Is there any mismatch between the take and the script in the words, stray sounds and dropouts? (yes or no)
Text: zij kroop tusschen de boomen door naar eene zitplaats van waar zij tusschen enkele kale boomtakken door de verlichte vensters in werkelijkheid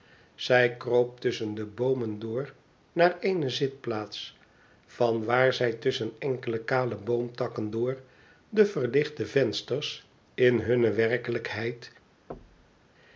yes